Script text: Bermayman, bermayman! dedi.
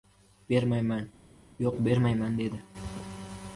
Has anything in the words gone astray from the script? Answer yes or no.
yes